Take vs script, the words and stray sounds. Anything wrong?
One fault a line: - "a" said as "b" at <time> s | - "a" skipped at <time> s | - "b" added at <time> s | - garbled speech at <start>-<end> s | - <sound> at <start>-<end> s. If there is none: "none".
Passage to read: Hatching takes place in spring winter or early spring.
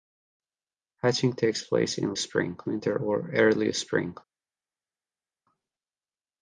none